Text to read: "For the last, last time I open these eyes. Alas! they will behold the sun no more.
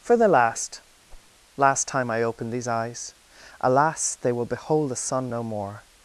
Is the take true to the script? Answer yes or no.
yes